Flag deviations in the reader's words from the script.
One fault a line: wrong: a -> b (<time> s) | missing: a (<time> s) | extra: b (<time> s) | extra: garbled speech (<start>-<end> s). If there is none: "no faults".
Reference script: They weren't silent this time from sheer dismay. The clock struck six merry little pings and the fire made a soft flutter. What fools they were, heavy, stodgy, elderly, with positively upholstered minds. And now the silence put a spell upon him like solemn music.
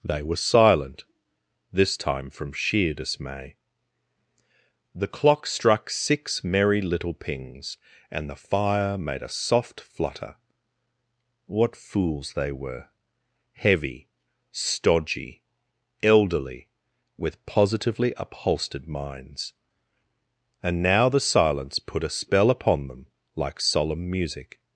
wrong: weren't -> were (0.2 s)
wrong: him -> them (22.9 s)